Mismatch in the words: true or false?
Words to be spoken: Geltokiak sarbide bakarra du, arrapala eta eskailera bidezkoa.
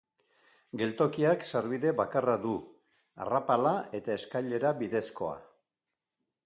false